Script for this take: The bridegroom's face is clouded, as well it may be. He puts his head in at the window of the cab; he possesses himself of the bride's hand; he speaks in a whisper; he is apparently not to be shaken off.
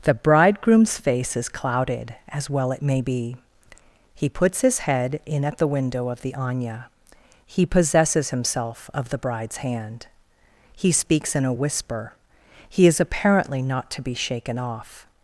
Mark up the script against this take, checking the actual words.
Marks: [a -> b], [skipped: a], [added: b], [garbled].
The bridegroom's face is clouded, as well it may be. He puts his head in at the window of the [cab; -> anya] he possesses himself of the bride's hand; he speaks in a whisper; he is apparently not to be shaken off.